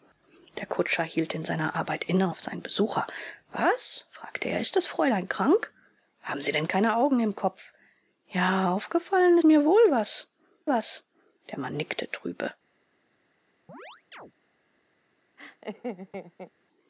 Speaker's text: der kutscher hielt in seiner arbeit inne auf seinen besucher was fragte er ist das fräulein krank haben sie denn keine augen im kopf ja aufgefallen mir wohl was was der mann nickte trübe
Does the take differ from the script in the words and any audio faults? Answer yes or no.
yes